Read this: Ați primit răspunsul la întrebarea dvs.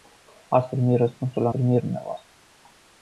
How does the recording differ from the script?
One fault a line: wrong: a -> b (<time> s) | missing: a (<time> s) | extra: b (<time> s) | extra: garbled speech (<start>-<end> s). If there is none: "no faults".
wrong: întrebarea -> primit (1.5 s)